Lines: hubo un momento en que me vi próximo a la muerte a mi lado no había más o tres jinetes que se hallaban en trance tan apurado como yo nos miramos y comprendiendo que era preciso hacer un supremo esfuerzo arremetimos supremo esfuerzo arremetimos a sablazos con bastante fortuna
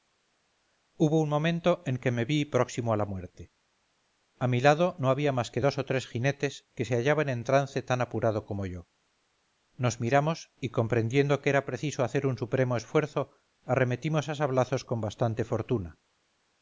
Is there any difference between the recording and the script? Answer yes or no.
yes